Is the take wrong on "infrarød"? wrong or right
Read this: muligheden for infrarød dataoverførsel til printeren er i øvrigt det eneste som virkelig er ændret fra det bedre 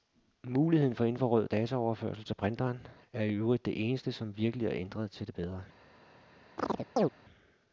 right